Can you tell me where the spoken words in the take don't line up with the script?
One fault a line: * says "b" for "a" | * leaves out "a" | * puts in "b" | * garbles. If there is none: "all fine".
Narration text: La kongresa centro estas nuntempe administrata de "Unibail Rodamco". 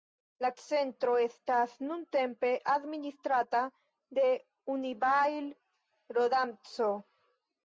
* leaves out "kongresa"